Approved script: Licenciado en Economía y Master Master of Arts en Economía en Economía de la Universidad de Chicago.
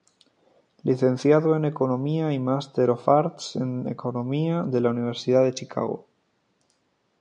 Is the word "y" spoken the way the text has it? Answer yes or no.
yes